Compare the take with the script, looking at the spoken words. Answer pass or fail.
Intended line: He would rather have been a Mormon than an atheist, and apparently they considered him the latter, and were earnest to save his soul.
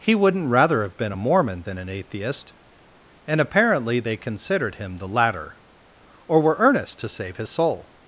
fail